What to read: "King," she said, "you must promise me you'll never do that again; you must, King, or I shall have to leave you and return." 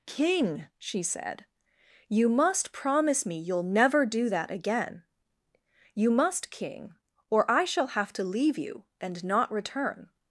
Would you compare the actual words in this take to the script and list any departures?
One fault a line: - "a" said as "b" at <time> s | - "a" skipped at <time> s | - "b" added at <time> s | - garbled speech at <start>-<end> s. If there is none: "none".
- "not" added at 9.2 s